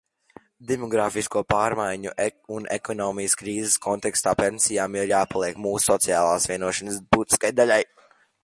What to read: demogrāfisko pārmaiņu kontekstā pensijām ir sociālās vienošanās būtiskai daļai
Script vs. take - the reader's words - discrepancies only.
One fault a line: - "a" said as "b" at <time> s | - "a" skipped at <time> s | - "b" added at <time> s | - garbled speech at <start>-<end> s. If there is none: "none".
- "un ekonomikas krīzes" added at 2.5 s
- "jāpaliek mūsu" added at 5.1 s